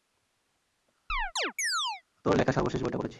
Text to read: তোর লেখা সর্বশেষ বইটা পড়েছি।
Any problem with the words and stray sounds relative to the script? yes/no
yes